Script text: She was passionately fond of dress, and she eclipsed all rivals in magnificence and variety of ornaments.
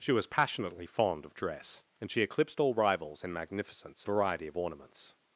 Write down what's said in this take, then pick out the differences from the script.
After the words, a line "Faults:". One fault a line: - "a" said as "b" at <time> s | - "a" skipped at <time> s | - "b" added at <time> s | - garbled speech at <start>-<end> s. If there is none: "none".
She was passionately fond of dress, and she eclipsed all rivals in magnificence variety of ornaments.
Faults:
- "and" skipped at 4.0 s